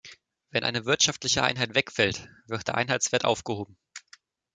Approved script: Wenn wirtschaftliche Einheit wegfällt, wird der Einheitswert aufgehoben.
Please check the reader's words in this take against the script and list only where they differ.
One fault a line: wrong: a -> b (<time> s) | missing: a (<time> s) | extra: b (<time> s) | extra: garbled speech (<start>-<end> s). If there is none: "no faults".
extra: eine (0.6 s)